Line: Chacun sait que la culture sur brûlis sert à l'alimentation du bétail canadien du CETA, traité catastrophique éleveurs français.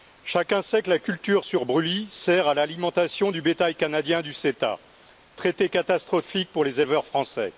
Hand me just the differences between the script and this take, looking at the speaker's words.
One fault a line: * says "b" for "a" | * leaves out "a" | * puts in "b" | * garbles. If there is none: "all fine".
* puts in "pour les"